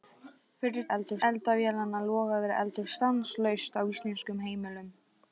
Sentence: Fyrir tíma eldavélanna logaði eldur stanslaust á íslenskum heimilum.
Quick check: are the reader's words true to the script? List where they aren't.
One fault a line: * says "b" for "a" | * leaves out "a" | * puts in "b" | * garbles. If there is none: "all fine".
* says "eldur" for "tíma"